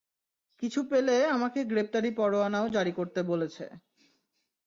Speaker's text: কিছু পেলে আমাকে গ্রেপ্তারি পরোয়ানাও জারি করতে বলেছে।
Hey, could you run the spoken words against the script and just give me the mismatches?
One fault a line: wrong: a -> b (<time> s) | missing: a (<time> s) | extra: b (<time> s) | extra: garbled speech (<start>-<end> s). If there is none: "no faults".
no faults